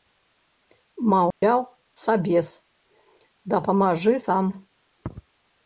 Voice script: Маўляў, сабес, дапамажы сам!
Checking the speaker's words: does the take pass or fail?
pass